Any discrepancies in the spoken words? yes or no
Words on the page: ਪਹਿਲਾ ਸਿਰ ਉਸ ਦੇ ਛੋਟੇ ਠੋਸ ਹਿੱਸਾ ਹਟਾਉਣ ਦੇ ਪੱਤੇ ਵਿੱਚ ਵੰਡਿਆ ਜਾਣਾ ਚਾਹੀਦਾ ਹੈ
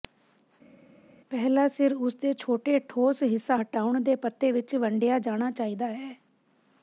no